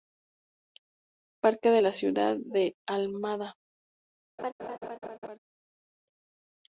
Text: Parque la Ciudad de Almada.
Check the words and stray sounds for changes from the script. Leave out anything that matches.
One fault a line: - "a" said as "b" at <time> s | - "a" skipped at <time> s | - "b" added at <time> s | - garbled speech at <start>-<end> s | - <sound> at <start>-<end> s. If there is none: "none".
- "de" added at 1.7 s
- laugh at 4.4-5.4 s